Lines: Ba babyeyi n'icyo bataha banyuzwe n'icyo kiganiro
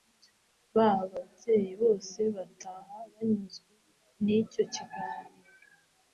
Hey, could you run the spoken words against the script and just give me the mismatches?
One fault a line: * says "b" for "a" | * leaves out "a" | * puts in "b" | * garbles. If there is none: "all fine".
* says "bose" for "n'icyo"